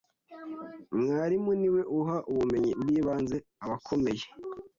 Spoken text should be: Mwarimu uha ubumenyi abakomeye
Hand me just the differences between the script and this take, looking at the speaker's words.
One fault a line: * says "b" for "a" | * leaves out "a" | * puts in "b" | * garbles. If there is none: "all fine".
* puts in "niwe"
* puts in "bw'ibanze"